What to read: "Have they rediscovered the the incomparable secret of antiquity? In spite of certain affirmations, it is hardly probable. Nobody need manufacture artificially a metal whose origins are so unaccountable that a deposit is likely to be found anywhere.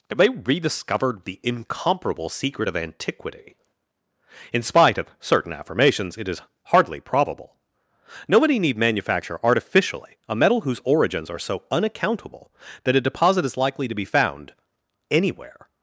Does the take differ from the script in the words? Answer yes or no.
yes